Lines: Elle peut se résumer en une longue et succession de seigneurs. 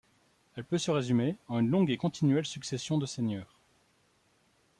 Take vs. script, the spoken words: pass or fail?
fail